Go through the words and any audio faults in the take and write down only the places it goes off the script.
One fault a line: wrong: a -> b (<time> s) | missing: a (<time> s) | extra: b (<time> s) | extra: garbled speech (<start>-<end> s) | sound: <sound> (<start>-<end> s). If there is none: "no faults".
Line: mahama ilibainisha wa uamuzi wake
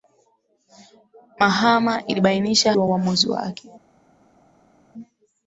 no faults